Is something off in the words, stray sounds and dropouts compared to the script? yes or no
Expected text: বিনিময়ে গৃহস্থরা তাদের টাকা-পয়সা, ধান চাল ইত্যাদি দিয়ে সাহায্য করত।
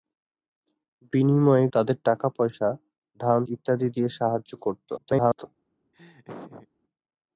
yes